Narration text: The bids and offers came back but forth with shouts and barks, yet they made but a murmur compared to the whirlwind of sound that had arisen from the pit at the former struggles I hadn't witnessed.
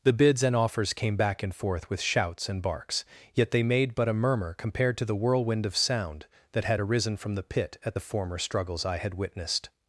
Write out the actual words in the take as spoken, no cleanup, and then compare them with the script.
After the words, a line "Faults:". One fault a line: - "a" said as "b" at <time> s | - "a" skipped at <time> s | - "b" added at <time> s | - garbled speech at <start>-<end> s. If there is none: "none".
The bids and offers came back and forth with shouts and barks, yet they made but a murmur compared to the whirlwind of sound that had arisen from the pit at the former struggles I had witnessed.
Faults:
- "but" said as "and" at 1.4 s
- "hadn't" said as "had" at 9.0 s